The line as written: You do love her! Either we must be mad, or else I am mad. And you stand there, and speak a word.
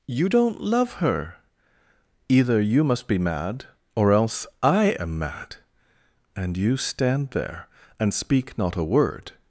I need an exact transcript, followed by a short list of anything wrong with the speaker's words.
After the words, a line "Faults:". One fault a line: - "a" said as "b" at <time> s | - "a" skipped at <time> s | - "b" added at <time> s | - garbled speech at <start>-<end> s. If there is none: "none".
You don't love her! Either you must be mad, or else I am mad. And you stand there, and speak not a word.
Faults:
- "do" said as "don't" at 0.3 s
- "we" said as "you" at 2.6 s
- "not" added at 8.6 s